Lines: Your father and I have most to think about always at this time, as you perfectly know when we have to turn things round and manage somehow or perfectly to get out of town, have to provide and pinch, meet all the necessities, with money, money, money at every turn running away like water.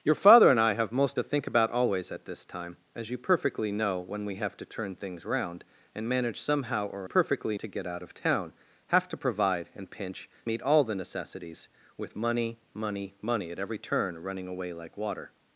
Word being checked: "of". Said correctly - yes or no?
yes